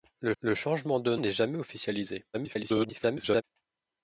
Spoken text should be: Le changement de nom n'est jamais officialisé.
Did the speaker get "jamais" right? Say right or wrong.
right